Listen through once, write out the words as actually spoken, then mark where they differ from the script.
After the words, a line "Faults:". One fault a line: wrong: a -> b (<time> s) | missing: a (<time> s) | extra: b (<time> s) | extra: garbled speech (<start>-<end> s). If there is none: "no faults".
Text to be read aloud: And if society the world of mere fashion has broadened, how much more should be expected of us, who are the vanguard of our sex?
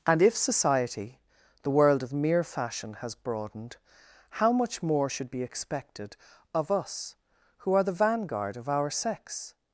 And if society the world of mere fashion has broadened, how much more should be expected of us, who are the vanguard of our sex?
Faults:
no faults